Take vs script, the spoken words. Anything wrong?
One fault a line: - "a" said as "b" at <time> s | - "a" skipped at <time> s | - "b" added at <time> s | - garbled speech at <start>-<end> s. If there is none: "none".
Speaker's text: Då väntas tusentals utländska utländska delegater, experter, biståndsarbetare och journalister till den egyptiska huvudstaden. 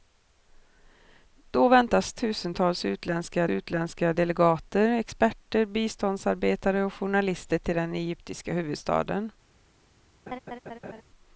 none